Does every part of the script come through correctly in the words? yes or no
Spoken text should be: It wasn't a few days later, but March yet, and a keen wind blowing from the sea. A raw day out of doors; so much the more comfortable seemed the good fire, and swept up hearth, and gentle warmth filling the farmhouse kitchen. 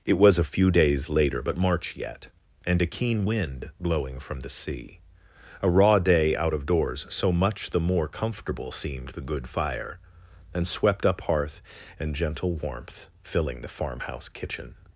no